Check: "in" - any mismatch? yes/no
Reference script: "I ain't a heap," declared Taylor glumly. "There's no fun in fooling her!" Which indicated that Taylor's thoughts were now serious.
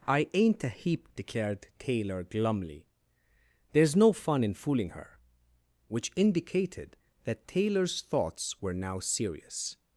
no